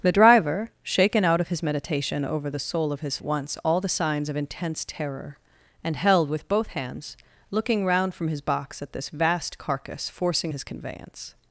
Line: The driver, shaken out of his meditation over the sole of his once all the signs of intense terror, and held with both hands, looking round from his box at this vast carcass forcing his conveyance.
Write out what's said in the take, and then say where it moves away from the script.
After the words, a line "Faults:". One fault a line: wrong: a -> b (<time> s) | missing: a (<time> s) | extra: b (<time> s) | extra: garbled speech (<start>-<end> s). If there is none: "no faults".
The driver, shaken out of his meditation over the sole of his once all the signs of intense terror, and held with both hands, looking round from his box at this vast carcass forcing his conveyance.
Faults:
no faults